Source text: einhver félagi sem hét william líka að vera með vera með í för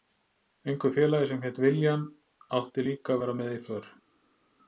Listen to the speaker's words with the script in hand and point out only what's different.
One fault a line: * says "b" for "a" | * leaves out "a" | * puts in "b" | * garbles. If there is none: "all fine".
* puts in "átti"
* leaves out "vera með"